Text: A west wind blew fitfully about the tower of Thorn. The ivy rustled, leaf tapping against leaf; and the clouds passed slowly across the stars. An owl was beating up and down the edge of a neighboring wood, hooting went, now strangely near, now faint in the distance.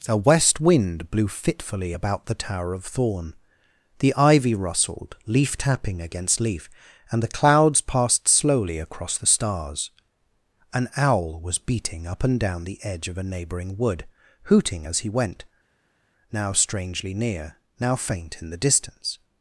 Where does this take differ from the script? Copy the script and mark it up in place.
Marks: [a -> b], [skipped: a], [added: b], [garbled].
A west wind blew fitfully about the tower of Thorn. The ivy rustled, leaf tapping against leaf; and the clouds passed slowly across the stars. An owl was beating up and down the edge of a neighboring wood, hooting [added: as he] went, now strangely near, now faint in the distance.